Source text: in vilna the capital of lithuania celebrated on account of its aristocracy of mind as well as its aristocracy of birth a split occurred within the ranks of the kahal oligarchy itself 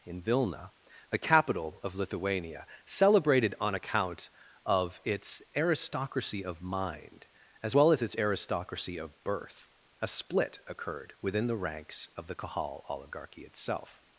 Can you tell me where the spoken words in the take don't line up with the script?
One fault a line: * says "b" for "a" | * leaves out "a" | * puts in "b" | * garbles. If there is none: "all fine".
all fine